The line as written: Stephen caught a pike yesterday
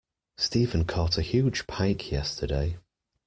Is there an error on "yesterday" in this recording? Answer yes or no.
no